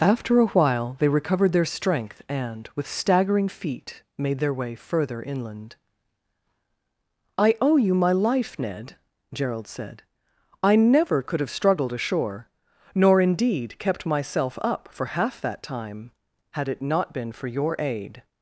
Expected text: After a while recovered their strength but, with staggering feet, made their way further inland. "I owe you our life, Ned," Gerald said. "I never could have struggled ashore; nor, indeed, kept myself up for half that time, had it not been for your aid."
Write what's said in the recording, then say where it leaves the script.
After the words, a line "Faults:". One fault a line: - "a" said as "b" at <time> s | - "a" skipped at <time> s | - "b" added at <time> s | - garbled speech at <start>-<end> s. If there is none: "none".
After a while they recovered their strength and, with staggering feet, made their way further inland. "I owe you my life, Ned," Gerald said. "I never could have struggled ashore; nor, indeed, kept myself up for half that time, had it not been for your aid."
Faults:
- "they" added at 1.0 s
- "but" said as "and" at 2.3 s
- "our" said as "my" at 7.9 s